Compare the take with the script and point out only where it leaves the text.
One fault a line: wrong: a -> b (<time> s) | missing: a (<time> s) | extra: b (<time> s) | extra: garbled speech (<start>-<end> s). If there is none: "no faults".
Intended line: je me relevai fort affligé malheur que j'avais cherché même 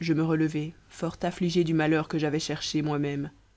extra: du (1.6 s)
extra: moi (2.8 s)